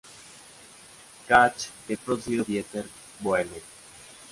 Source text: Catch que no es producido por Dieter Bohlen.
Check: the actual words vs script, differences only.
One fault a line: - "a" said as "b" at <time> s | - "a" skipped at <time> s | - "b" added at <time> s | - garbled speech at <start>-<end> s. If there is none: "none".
- "no" skipped at 1.9 s
- "por" skipped at 2.4 s